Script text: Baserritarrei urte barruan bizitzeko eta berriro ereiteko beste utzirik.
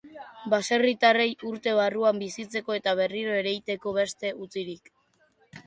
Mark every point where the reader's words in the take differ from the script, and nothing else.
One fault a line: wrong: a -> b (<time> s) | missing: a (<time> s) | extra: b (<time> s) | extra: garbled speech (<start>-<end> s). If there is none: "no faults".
no faults